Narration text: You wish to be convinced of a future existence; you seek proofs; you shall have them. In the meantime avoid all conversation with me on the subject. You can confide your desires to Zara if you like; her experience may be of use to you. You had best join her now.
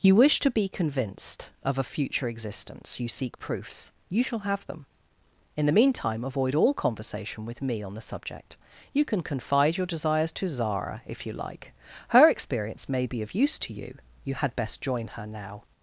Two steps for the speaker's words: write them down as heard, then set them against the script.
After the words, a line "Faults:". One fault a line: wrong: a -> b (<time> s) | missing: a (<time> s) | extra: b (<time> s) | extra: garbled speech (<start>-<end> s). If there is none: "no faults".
You wish to be convinced of a future existence; you seek proofs; you shall have them. In the meantime avoid all conversation with me on the subject. You can confide your desires to Zara if you like; her experience may be of use to you. You had best join her now.
Faults:
no faults